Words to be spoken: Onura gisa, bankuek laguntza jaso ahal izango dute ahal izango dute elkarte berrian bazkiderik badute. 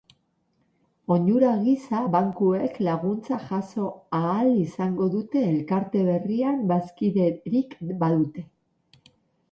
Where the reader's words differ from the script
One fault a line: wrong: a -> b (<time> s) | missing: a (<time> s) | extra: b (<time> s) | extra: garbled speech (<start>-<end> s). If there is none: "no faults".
missing: ahal izango dute (5.4 s)